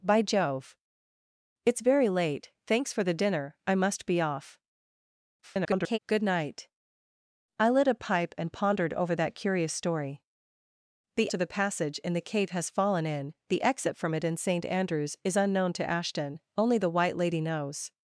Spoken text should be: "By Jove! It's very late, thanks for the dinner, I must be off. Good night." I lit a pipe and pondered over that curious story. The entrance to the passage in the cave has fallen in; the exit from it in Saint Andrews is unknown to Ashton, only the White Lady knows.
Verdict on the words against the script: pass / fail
fail